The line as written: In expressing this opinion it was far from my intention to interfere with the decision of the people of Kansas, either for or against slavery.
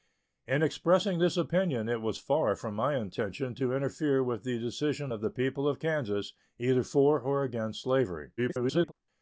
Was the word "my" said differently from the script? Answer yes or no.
no